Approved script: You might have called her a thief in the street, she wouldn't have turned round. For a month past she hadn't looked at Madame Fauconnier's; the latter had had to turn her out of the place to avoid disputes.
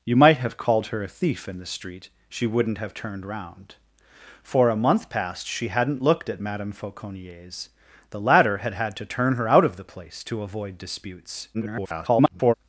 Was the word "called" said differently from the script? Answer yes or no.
no